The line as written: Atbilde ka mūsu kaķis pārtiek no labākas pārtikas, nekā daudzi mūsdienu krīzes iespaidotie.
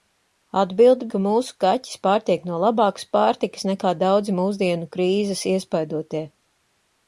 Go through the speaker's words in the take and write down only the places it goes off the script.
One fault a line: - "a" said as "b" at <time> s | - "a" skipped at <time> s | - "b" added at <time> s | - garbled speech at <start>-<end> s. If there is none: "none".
none